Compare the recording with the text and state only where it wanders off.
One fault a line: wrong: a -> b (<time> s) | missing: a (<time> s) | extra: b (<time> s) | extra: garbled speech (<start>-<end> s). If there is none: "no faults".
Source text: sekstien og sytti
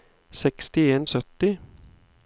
no faults